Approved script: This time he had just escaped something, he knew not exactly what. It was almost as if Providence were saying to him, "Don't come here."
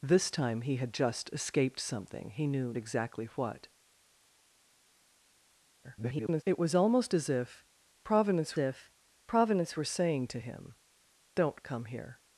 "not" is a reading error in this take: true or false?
true